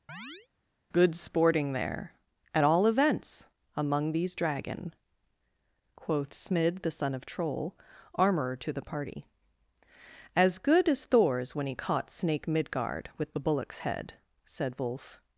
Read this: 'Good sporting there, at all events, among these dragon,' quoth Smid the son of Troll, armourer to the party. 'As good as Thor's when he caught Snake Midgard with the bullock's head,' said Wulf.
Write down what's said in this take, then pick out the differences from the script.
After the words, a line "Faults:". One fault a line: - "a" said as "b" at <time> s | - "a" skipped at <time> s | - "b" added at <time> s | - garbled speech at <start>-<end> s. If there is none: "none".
'Good sporting there, at all events, among these dragon,' quoth Smid the son of Troll, armourer to the party. 'As good as Thor's when he caught Snake Midgard with the bullock's head,' said Wulf.
Faults:
none